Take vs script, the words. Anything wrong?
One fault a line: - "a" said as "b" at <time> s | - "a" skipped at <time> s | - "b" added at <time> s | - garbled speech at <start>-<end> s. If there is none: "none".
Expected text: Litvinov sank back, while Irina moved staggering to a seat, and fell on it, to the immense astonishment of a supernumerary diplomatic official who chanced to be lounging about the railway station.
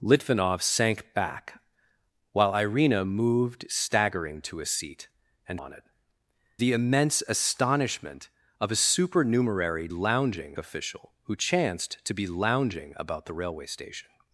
- "fell" skipped at 5.6 s
- "to" skipped at 5.8 s
- "diplomatic" said as "lounging" at 9.9 s